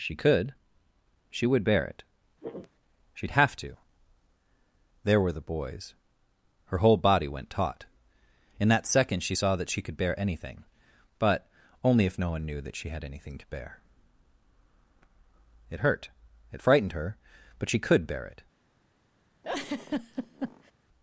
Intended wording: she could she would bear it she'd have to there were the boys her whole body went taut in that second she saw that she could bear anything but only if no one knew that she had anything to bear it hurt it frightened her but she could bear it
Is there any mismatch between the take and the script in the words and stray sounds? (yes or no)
yes